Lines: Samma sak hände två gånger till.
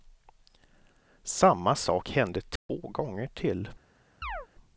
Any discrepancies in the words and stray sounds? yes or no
yes